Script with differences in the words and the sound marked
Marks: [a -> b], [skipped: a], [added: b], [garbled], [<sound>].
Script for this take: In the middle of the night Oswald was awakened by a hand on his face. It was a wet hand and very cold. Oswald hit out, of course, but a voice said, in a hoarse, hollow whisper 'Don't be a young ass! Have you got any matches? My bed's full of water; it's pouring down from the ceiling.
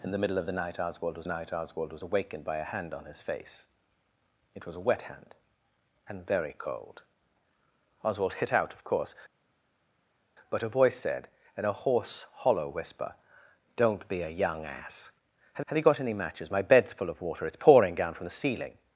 In the middle of the night Oswald was [added: night Oswald was] awakened by a hand on his face. It was a wet hand and very cold. Oswald hit out, of course, but a voice said, in a hoarse, hollow whisper 'Don't be a young ass! Have [added: have] you got any matches? My bed's full of water; it's pouring down from the ceiling.